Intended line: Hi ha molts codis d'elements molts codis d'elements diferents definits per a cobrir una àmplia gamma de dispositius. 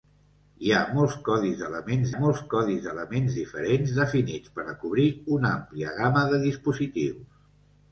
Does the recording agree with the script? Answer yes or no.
yes